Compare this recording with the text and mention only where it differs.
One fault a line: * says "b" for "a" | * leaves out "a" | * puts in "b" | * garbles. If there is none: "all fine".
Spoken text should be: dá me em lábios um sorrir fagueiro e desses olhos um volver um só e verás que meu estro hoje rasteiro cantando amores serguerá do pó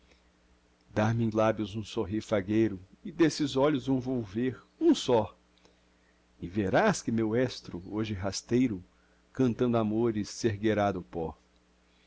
all fine